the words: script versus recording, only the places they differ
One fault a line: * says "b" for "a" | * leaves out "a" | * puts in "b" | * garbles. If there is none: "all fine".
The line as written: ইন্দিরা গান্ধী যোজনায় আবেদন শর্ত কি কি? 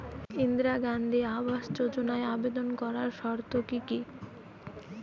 * puts in "আবাস"
* puts in "করার"